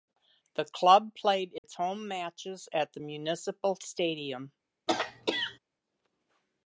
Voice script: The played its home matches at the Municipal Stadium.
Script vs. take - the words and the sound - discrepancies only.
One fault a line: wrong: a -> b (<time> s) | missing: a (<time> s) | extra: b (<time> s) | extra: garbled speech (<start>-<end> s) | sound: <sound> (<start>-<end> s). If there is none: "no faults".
extra: club (0.7 s)
sound: dropout (1.6-1.6 s)
sound: throat clearing (4.9-5.6 s)